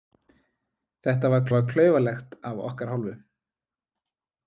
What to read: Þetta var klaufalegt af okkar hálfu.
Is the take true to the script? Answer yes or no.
no